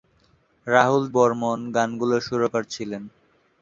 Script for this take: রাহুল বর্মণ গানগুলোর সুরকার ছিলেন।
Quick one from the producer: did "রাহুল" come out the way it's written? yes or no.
yes